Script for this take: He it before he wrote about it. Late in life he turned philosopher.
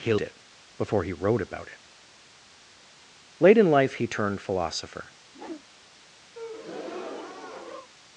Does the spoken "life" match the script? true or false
true